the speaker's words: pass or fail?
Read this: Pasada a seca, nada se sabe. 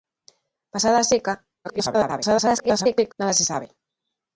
fail